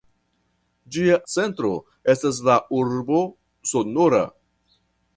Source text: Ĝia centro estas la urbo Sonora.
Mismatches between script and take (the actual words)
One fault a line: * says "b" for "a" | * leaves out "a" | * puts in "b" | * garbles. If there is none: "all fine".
all fine